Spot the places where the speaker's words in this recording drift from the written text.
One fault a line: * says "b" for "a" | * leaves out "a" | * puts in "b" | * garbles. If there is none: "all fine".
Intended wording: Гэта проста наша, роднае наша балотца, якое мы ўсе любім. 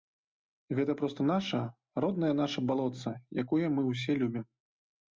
all fine